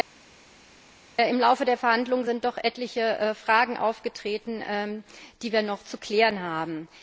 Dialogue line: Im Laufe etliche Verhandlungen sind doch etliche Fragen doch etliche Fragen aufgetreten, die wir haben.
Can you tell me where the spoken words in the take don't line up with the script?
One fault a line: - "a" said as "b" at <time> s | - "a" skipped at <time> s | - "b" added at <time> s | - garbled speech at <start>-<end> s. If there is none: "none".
- "etliche" said as "der" at 1.6 s
- "doch etliche Fragen aufgetreten die wir" said as "aufgetreten die wir noch zu klären" at 3.8 s